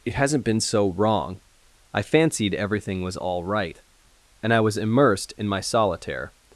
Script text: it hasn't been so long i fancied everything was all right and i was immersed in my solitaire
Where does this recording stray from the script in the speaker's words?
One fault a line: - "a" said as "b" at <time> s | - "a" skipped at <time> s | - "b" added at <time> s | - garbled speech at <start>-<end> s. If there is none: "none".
- "long" said as "wrong" at 0.9 s